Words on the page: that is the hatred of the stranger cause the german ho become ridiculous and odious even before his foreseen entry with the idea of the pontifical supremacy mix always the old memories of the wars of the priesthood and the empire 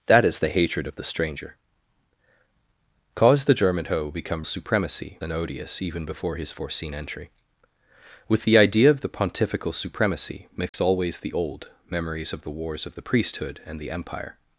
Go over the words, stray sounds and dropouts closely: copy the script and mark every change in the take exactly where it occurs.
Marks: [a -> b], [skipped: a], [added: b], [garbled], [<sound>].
that is the hatred of the stranger cause the german ho become [ridiculous -> supremacy] and odious even before his foreseen entry with the idea of the pontifical supremacy mix [dropout] always the old memories of the wars of the priesthood and the empire